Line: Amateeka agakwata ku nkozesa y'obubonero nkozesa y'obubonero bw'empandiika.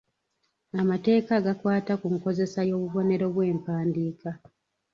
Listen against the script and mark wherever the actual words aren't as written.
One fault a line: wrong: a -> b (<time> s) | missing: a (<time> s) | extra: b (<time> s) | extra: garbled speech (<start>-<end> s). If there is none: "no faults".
missing: nkozesa y'obubonero (3.3 s)